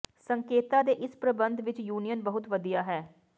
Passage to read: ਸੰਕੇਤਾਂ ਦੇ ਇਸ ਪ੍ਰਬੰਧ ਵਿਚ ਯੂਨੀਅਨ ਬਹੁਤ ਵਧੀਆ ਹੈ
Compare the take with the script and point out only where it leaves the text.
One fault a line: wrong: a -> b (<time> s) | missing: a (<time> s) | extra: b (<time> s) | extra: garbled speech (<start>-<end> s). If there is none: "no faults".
no faults